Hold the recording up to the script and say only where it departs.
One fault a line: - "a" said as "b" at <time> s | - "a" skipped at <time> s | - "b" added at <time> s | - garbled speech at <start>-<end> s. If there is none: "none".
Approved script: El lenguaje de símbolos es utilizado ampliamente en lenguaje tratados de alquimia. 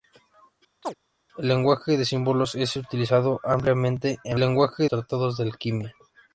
none